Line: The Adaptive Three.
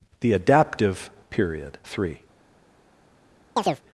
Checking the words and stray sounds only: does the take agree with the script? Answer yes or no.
no